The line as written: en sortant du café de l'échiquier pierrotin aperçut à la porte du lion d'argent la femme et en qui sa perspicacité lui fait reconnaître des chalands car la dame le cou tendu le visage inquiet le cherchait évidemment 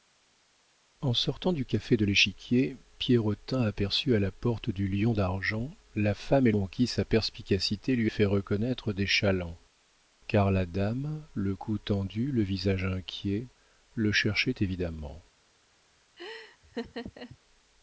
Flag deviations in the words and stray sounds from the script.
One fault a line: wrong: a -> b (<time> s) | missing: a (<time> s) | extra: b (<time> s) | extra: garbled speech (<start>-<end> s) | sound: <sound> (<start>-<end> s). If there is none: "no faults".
sound: laugh (16.2-17.4 s)